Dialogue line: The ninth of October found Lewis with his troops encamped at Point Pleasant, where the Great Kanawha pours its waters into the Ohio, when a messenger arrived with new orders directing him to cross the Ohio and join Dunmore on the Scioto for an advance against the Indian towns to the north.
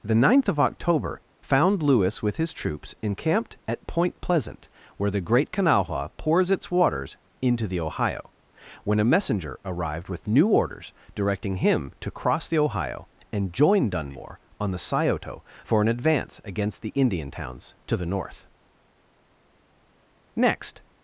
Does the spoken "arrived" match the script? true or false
true